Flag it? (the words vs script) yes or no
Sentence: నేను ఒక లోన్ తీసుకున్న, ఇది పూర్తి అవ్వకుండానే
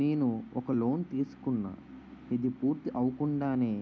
no